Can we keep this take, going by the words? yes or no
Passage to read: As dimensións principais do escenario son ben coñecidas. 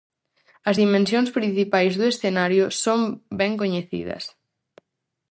yes